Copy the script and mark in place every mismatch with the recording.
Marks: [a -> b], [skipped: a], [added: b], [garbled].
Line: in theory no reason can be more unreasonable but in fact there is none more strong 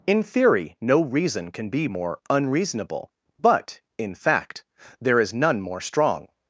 in theory no reason can be more unreasonable but in fact there is none more strong